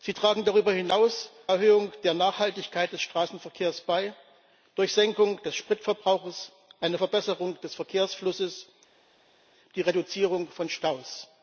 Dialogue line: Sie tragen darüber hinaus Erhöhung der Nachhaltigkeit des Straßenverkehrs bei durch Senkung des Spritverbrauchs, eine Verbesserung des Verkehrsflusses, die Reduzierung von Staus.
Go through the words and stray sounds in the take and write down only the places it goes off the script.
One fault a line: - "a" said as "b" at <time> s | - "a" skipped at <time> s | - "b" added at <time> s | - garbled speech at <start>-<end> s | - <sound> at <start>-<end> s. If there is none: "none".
none